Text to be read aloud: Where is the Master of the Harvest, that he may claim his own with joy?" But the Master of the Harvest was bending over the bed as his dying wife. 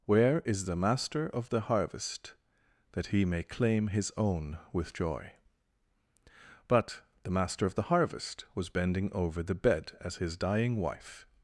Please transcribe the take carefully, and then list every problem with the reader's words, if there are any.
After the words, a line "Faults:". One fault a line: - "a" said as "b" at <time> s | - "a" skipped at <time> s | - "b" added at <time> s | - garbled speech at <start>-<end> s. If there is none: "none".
Where is the Master of the Harvest, that he may claim his own with joy?" But the Master of the Harvest was bending over the bed as his dying wife.
Faults:
none